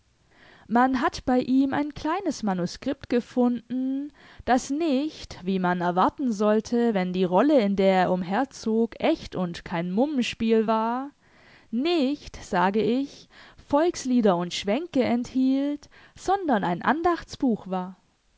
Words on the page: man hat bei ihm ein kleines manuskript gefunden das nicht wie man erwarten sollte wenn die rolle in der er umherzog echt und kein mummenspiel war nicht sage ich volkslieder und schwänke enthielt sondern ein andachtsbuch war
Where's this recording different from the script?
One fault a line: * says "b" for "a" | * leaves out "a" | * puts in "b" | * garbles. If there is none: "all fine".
all fine